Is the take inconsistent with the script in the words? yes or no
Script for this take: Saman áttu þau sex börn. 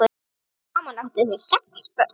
no